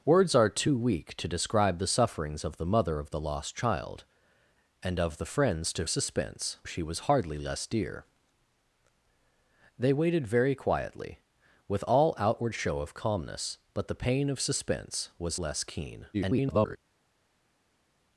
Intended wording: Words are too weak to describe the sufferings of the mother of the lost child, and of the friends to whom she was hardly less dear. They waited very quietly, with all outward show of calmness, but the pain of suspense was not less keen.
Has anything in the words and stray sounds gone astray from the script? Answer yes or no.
yes